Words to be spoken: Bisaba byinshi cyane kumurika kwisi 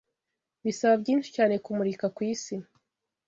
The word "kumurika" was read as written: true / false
true